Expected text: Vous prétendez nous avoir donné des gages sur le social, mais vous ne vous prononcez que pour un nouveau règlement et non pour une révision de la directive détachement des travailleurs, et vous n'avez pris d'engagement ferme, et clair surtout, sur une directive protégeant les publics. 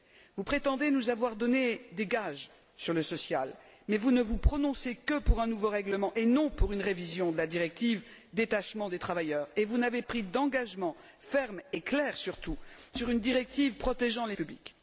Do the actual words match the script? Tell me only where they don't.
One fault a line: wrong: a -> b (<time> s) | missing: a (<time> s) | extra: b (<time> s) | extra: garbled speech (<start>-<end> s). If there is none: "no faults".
no faults